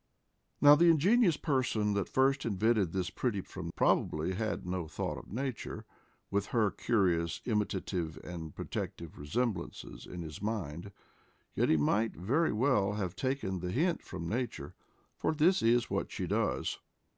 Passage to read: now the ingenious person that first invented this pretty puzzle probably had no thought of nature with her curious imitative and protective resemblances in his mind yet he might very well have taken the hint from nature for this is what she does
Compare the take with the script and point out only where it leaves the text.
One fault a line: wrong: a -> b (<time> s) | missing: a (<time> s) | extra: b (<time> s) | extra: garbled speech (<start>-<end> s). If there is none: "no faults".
wrong: puzzle -> from (3.5 s)